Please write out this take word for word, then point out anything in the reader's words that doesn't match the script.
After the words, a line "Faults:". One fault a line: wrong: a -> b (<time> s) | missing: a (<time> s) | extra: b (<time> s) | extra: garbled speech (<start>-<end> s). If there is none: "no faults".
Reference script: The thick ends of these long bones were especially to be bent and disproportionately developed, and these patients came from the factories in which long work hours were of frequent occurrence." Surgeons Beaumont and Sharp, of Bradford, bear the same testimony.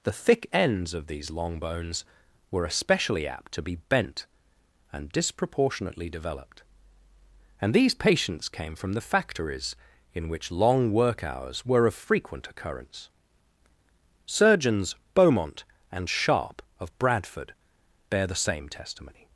The thick ends of these long bones were especially apt to be bent and disproportionately developed, and these patients came from the factories in which long work hours were of frequent occurrence." Surgeons Beaumont and Sharp, of Bradford, bear the same testimony.
Faults:
extra: apt (3.3 s)